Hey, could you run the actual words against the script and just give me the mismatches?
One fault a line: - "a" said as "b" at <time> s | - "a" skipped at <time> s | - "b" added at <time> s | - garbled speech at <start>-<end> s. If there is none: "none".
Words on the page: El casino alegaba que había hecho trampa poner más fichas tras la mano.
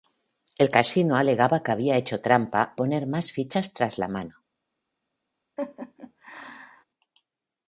none